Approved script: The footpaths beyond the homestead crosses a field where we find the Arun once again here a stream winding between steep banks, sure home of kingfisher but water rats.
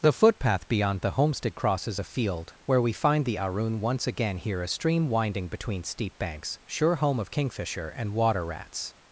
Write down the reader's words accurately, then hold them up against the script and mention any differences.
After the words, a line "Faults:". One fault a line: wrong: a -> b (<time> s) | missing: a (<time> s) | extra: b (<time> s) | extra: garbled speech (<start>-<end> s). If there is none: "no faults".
The footpath beyond the homestead crosses a field where we find the Arun once again here a stream winding between steep banks, sure home of kingfisher and water rats.
Faults:
wrong: footpaths -> footpath (0.1 s)
wrong: but -> and (7.9 s)